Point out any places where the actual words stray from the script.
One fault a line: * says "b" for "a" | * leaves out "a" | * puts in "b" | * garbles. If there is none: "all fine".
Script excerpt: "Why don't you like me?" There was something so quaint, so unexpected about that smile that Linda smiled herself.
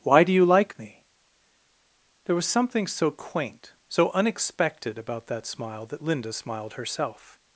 * says "do" for "don't"